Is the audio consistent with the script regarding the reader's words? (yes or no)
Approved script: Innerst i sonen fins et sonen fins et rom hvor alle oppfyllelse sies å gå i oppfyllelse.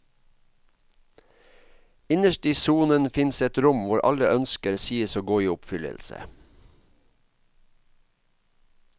no